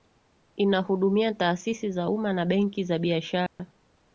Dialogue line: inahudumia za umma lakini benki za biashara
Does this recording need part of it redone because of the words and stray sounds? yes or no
yes